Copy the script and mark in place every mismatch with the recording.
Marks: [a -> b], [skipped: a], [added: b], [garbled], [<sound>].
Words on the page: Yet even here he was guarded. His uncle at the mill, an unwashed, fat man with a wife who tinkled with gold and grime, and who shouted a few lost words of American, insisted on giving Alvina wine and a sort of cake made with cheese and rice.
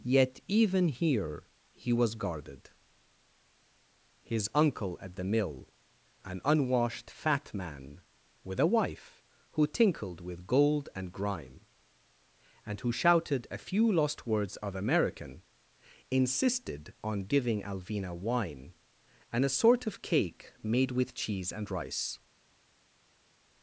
Yet even here he was guarded. His uncle at the mill, an unwashed, fat man with a wife who tinkled with gold and grime, and who shouted a few lost words of American, insisted on giving Alvina wine and a sort of cake made with cheese and rice.